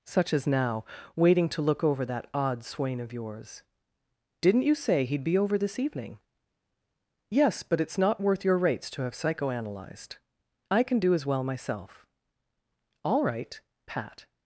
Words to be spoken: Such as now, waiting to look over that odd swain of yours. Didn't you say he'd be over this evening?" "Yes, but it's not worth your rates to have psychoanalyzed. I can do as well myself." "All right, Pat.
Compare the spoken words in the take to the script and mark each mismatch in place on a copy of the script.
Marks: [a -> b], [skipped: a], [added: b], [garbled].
Such as now, waiting to look over that odd swain of yours. Didn't you say he'd be over this evening?" "Yes, but it's not worth your rates to have psychoanalyzed. I can do as well myself." "All right, Pat.